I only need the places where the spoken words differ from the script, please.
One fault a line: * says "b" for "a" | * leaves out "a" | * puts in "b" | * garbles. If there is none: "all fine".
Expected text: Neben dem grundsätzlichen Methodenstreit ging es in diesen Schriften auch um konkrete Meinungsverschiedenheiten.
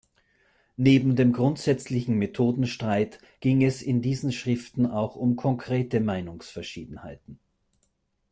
all fine